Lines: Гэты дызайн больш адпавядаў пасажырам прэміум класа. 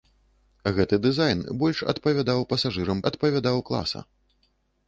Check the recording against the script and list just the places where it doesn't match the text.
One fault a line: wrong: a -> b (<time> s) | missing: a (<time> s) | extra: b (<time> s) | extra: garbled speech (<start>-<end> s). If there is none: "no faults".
wrong: прэміум -> адпавядаў (3.1 s)